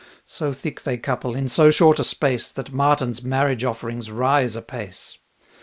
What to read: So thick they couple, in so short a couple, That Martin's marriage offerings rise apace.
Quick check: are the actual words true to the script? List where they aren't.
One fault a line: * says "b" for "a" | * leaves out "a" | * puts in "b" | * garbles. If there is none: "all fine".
* says "space" for "couple"